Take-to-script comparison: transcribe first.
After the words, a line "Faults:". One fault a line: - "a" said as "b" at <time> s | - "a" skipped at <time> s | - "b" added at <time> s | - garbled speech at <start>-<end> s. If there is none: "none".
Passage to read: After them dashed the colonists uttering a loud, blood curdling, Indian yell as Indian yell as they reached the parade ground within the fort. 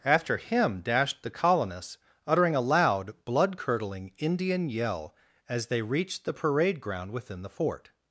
After him dashed the colonists uttering a loud, blood curdling, Indian yell as they reached the parade ground within the fort.
Faults:
- "them" said as "him" at 0.4 s
- "Indian yell as" skipped at 5.7 s